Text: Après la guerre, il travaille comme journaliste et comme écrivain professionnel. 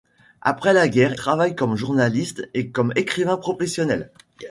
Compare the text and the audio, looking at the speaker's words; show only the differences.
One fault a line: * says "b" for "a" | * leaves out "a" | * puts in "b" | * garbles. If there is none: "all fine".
* leaves out "il"